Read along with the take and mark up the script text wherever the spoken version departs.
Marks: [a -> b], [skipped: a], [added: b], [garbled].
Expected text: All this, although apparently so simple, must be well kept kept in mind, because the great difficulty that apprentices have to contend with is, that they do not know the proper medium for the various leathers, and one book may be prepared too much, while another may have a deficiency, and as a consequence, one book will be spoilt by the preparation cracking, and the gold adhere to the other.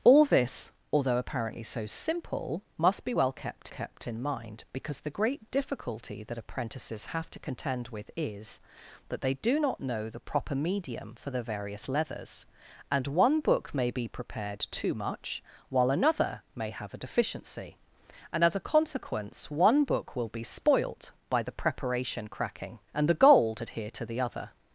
All this, although apparently so simple, must be well kept kept in mind, because the great difficulty that apprentices have to contend with is, that they do not know the proper medium for the various leathers, and one book may be prepared too much, while another may have a deficiency, and as a consequence, one book will be spoilt by the preparation cracking, and the gold adhere to the other.